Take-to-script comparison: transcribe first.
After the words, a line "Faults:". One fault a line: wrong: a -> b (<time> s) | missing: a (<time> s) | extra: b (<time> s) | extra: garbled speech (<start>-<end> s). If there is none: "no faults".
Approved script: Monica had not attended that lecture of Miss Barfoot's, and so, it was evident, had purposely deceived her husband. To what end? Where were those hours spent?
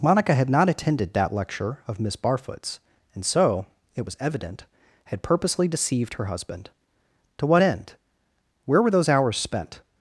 Monica had not attended that lecture of Miss Barfoot's, and so, it was evident, had purposely deceived her husband. To what end? Where were those hours spent?
Faults:
no faults